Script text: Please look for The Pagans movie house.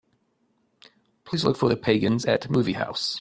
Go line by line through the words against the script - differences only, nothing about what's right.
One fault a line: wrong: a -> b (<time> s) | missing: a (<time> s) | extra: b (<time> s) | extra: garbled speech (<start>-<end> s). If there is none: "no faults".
extra: at (2.2 s)